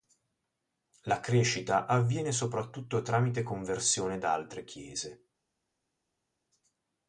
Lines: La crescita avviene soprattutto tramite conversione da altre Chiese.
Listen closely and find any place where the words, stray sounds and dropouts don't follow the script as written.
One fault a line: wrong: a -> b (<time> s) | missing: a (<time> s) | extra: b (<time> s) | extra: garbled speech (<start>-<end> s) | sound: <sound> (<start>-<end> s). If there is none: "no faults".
no faults